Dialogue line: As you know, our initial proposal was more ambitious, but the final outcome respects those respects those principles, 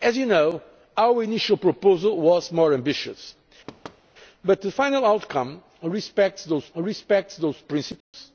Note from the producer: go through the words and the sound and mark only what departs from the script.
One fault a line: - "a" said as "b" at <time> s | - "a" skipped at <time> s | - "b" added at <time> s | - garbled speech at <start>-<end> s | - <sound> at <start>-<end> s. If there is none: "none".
- thud at 3.7-4.0 s
- dropout at 8.0-8.1 s